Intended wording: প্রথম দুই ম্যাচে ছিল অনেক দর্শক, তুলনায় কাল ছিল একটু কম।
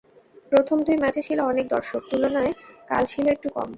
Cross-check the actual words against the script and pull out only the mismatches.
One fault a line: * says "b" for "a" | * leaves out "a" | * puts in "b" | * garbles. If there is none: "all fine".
all fine